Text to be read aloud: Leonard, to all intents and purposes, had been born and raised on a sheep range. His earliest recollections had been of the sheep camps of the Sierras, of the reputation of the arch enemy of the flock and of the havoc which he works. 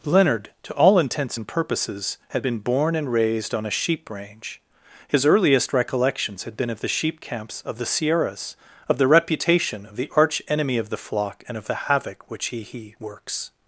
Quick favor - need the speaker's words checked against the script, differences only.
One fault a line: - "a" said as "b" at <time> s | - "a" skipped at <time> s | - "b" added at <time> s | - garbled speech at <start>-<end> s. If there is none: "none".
- "he" added at 12.6 s